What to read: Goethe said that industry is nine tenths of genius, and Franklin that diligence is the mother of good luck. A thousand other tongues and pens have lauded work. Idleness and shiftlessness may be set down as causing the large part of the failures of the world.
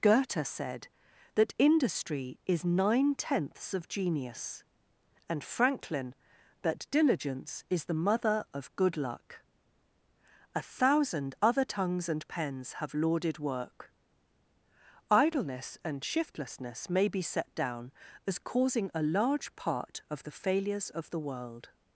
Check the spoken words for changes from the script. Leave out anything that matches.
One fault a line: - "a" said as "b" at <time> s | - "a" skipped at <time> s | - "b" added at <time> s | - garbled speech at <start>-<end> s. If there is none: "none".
- "the" said as "a" at 18.9 s